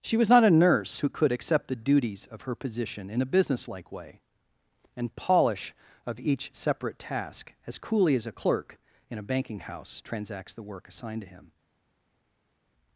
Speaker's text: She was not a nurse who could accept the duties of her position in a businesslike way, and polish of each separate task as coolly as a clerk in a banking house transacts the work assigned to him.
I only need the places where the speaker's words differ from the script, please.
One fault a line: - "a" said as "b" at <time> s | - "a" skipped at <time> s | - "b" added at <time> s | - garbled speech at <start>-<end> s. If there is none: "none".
none